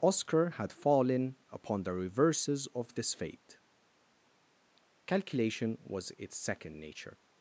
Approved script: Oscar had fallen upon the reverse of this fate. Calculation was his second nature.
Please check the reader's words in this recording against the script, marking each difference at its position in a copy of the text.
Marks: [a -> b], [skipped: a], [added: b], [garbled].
Oscar had fallen upon the [reverse -> reverses] of this fate. Calculation was [his -> its] second nature.